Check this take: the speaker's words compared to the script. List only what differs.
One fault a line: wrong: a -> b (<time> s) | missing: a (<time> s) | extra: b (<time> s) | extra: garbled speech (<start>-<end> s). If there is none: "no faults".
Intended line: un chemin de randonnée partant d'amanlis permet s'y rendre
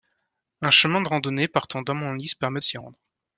no faults